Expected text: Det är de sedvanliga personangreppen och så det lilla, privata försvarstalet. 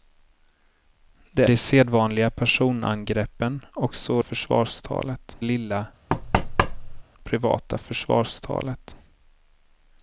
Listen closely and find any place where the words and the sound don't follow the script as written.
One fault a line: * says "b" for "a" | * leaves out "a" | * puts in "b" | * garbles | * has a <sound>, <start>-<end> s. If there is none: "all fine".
* leaves out "är"
* says "försvarstalet" for "det"
* has a thud, 6.1-7.0 s